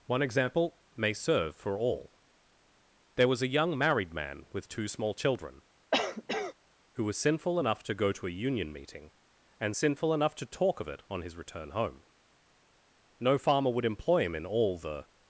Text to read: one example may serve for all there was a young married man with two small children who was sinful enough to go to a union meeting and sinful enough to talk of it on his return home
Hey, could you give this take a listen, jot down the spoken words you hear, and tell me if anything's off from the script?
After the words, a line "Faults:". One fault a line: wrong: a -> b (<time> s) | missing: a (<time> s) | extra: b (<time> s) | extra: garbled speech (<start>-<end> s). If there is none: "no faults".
one example may serve for all there was a young married man with two small children who was sinful enough to go to a union meeting and sinful enough to talk of it on his return home no farmer would employ him in all the
Faults:
extra: no farmer would employ him in all the (13.2 s)